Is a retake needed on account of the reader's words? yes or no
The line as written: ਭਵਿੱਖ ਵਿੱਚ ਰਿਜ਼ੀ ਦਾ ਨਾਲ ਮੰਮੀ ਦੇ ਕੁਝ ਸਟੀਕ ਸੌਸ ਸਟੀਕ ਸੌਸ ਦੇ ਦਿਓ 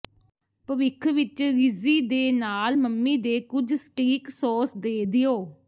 yes